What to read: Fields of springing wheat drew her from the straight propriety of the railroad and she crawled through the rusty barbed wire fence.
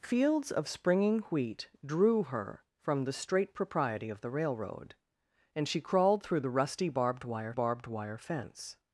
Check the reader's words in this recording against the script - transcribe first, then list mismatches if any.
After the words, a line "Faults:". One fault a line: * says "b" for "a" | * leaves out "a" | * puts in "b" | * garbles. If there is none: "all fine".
Fields of springing wheat drew her from the straight propriety of the railroad and she crawled through the rusty barbed wire barbed wire fence.
Faults:
* puts in "barbed wire"